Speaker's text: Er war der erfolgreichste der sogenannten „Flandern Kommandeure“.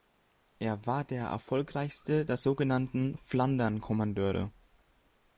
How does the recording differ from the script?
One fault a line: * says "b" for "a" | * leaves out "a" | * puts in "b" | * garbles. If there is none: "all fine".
all fine